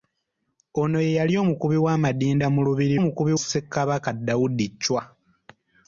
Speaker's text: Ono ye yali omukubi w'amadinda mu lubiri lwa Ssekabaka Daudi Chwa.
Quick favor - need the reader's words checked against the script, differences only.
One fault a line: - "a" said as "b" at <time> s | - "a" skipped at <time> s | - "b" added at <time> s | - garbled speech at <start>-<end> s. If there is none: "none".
- "lwa" said as "omukubi" at 3.0 s